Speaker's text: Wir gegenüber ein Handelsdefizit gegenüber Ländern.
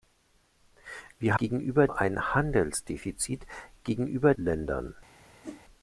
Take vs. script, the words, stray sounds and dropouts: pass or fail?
fail